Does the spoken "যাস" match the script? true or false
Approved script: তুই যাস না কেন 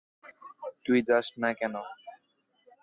true